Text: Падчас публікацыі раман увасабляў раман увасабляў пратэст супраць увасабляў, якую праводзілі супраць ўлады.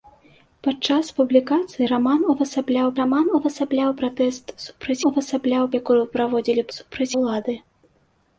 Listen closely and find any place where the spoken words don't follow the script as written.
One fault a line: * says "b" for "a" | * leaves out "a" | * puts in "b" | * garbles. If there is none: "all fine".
all fine